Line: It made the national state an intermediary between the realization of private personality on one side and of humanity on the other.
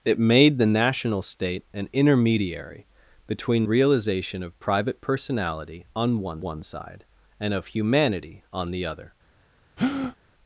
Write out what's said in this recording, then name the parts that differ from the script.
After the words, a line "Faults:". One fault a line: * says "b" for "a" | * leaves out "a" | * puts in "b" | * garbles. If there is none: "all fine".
It made the national state an intermediary between realization of private personality on one one side and of humanity on the other.
Faults:
* leaves out "the"
* puts in "one"